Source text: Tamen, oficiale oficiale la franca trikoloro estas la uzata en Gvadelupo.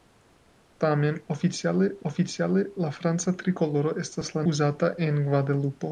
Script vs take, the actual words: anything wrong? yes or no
no